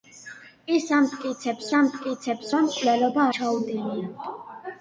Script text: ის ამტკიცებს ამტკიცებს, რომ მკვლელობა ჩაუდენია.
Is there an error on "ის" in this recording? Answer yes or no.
no